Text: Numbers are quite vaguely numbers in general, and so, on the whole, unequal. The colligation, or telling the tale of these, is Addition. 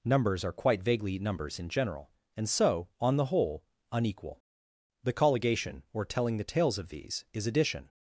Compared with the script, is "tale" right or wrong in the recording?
wrong